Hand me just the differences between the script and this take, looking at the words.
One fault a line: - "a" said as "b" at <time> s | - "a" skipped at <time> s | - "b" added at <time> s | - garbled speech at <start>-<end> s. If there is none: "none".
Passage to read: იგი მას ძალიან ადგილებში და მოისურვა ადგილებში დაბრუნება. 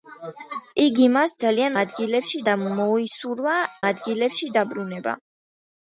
none